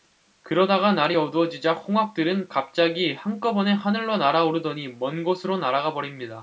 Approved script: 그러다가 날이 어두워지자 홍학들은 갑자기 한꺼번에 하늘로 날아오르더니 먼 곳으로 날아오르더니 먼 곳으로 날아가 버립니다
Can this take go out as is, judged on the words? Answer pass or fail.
fail